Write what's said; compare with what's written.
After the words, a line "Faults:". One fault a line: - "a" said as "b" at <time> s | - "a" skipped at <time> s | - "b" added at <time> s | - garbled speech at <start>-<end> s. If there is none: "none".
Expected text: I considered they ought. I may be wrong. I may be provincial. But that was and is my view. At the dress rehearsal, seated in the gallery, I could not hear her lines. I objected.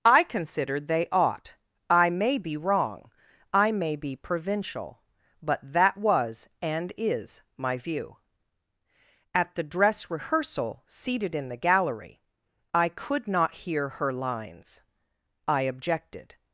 I considered they ought. I may be wrong. I may be provincial. But that was and is my view. At the dress rehearsal, seated in the gallery, I could not hear her lines. I objected.
Faults:
none